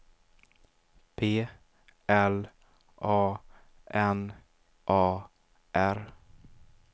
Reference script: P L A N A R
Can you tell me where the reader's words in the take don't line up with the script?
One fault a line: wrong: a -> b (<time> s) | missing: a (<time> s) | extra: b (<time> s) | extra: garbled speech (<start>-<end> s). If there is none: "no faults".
no faults